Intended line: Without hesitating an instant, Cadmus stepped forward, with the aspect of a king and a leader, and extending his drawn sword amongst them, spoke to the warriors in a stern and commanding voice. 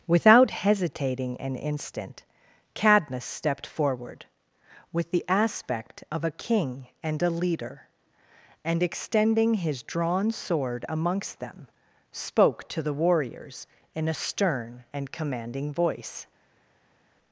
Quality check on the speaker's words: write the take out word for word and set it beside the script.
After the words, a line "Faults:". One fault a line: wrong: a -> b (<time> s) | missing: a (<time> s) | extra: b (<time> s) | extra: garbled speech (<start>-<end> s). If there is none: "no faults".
Without hesitating an instant, Cadmus stepped forward, with the aspect of a king and a leader, and extending his drawn sword amongst them, spoke to the warriors in a stern and commanding voice.
Faults:
no faults